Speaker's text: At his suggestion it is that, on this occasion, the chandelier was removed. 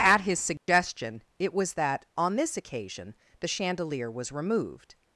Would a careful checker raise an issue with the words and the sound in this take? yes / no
yes